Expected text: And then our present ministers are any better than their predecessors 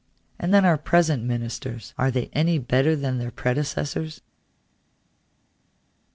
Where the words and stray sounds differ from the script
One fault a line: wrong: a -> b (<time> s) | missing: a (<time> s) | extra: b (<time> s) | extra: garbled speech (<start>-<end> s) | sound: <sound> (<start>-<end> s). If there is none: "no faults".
extra: they (2.1 s)